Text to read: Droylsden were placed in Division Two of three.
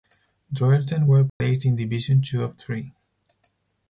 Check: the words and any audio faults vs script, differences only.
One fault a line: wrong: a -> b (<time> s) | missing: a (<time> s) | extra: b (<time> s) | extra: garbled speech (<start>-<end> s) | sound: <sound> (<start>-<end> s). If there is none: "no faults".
sound: dropout (1.3-1.4 s)